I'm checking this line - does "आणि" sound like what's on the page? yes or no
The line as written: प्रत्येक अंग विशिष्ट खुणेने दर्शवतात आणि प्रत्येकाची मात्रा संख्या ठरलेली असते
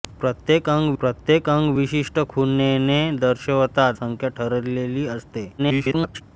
no